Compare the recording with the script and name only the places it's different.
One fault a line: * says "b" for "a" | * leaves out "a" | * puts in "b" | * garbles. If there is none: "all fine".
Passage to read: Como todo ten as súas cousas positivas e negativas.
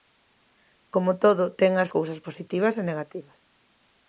* leaves out "súas"